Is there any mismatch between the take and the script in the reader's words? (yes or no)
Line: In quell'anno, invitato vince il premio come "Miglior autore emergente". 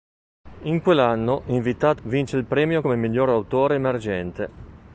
no